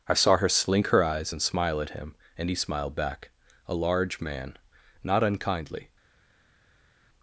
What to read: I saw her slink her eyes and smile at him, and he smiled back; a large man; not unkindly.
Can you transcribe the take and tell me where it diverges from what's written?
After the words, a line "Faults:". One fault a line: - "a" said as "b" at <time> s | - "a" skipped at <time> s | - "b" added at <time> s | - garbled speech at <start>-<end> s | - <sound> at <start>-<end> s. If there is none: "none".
I saw her slink her eyes and smile at him, and he smiled back; a large man; not unkindly.
Faults:
none